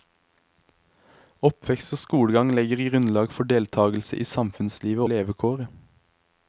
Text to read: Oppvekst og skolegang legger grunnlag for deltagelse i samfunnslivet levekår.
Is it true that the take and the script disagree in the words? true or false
false